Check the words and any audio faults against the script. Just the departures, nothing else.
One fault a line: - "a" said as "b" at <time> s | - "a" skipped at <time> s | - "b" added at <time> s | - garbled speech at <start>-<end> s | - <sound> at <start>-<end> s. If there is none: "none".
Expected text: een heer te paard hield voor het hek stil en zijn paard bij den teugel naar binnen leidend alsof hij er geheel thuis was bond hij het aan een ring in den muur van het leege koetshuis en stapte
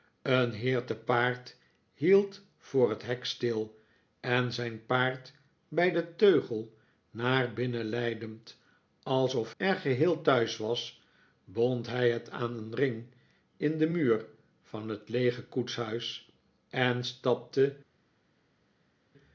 - "hij" skipped at 9.5 s